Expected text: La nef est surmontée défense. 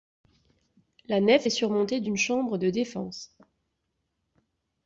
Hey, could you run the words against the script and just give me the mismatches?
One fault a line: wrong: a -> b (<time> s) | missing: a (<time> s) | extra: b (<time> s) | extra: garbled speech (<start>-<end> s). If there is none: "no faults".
extra: d'une chambre de (2.0 s)